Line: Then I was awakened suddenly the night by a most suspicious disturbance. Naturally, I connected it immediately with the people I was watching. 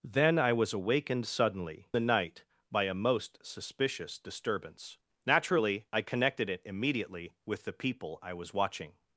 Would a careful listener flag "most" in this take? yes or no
no